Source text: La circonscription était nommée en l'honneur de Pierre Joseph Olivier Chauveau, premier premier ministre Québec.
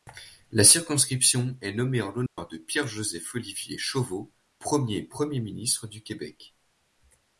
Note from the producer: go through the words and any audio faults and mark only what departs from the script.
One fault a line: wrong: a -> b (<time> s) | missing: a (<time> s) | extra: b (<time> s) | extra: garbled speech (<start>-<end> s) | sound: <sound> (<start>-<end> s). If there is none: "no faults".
wrong: était -> est (1.6 s)
sound: dropout (2.3-2.4 s)
extra: du (5.9 s)